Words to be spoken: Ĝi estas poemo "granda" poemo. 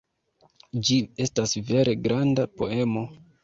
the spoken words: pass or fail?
fail